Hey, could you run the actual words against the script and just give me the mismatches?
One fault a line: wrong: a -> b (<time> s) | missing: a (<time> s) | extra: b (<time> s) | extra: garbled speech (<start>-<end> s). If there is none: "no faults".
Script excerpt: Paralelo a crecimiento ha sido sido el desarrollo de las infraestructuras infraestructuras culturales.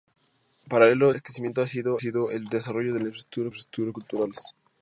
no faults